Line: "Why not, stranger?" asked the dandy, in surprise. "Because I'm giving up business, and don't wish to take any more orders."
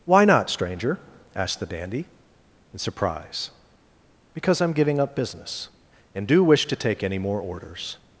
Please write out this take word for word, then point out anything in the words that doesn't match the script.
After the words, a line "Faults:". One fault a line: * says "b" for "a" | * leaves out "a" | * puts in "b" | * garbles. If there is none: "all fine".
"Why not, stranger?" asked the dandy, in surprise. "Because I'm giving up business, and do wish to take any more orders."
Faults:
* says "do" for "don't"